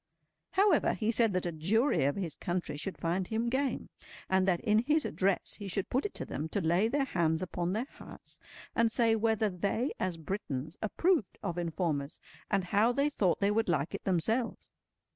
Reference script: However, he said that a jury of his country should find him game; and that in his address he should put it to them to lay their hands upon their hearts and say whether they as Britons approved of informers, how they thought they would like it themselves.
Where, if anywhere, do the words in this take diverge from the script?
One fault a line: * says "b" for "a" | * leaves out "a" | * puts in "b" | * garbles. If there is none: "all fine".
* puts in "and"